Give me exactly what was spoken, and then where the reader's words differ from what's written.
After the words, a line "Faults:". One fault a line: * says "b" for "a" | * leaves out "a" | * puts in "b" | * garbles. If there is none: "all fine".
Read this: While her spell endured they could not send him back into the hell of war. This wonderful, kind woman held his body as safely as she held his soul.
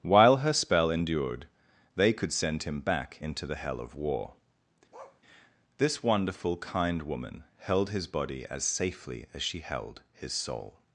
While her spell endured they could send him back into the hell of war. This wonderful, kind woman held his body as safely as she held his soul.
Faults:
* leaves out "not"